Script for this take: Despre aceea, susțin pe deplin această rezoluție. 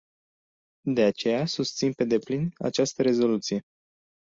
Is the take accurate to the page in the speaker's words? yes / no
no